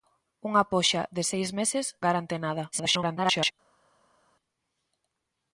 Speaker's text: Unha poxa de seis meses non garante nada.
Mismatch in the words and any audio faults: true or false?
true